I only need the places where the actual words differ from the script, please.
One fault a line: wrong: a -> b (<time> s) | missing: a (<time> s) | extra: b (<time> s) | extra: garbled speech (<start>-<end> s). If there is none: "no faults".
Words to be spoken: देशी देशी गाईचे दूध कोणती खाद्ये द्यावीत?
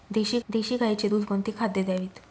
no faults